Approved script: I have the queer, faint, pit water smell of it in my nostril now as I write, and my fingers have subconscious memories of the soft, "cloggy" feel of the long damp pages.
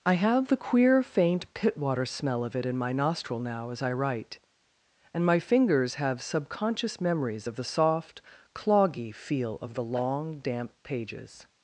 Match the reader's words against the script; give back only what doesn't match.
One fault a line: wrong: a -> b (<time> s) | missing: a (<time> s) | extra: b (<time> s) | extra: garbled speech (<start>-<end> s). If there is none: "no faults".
no faults